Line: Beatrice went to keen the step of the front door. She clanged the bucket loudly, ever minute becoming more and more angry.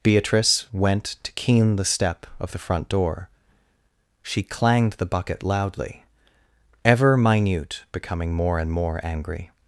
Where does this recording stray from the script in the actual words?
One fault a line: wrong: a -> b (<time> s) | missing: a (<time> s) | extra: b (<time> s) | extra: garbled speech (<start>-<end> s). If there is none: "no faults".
no faults